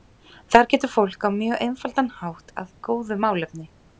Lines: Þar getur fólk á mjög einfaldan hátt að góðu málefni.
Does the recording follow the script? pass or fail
pass